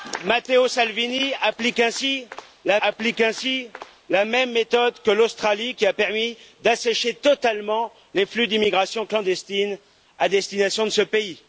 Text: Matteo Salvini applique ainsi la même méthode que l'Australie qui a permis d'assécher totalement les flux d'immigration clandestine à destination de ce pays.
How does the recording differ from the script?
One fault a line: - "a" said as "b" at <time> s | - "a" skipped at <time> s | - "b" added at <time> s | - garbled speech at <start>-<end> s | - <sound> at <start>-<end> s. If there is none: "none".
- "applique ainsi la" added at 2.8 s